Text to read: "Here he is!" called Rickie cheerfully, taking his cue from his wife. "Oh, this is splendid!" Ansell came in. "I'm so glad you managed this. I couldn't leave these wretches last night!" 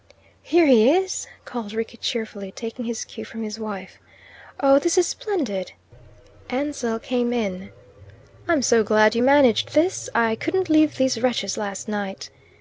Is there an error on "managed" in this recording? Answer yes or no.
no